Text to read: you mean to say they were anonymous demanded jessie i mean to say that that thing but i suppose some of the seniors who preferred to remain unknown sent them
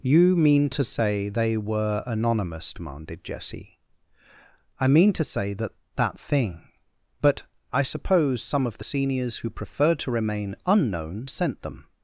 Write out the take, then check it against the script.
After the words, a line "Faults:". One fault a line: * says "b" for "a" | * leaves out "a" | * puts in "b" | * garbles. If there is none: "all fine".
you mean to say they were anonymous demanded jessie i mean to say that that thing but i suppose some of the seniors who preferred to remain unknown sent them
Faults:
all fine